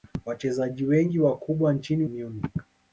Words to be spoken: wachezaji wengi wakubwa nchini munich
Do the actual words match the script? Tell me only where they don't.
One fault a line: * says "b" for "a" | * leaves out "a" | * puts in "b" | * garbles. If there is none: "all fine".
all fine